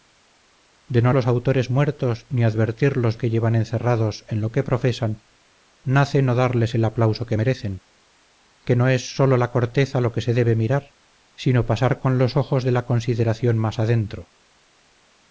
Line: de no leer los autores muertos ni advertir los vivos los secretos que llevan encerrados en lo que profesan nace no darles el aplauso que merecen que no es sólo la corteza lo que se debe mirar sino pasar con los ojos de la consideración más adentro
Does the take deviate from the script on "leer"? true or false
true